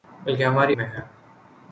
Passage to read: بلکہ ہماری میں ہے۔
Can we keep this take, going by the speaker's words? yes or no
yes